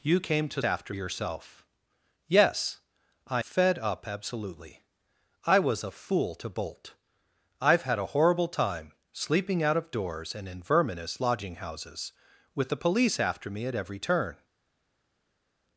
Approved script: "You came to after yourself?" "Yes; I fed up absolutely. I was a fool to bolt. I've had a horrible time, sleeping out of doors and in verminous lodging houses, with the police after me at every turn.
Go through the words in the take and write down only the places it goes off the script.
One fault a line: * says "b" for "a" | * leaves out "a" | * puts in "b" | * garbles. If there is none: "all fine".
all fine